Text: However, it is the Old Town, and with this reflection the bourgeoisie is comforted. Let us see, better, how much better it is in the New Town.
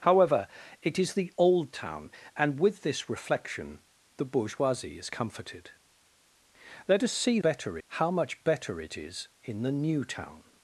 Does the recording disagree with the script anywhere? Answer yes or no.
no